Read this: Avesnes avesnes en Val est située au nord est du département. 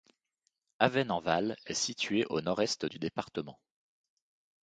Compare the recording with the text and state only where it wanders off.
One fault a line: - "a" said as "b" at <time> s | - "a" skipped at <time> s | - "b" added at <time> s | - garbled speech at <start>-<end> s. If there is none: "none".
- "avesnes" skipped at 1.1 s